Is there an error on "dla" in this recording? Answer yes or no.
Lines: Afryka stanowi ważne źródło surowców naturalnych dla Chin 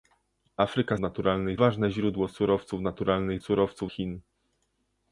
yes